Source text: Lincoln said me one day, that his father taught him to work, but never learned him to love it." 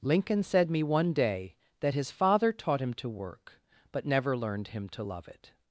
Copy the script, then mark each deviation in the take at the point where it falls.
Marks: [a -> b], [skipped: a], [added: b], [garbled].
Lincoln said me one day, that his father taught him to work, but never learned him to love it."